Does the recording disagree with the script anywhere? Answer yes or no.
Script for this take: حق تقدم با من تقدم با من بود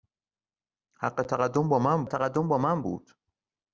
no